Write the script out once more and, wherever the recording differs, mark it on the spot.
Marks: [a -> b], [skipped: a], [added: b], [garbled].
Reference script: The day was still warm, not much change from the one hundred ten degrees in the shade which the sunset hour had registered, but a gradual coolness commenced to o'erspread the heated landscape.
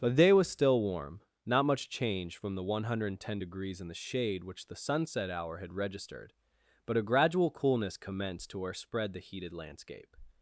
The day was still warm, not much change from the one hundred ten degrees in the shade which the sunset hour had registered, but a gradual coolness commenced to o'erspread the heated landscape.